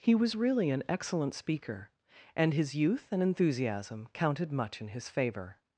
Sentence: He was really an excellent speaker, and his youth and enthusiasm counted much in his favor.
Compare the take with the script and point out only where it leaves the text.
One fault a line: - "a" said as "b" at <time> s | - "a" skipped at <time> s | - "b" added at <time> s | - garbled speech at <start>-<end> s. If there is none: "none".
none